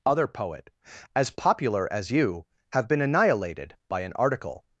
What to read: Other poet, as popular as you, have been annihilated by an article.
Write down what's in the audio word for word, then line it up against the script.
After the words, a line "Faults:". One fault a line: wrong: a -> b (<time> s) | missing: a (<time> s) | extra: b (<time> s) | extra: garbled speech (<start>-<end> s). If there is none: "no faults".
Other poet, as popular as you, have been annihilated by an article.
Faults:
no faults